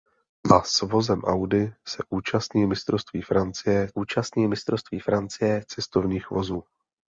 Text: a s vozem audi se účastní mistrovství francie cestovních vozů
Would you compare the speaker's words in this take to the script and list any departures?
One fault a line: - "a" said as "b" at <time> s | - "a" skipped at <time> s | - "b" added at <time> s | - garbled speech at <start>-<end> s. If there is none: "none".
- "účastní mistrovství francie" added at 3.9 s